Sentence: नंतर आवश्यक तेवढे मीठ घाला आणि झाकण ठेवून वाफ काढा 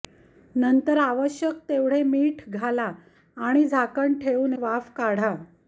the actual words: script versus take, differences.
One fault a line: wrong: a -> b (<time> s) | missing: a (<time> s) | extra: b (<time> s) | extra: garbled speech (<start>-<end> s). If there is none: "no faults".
no faults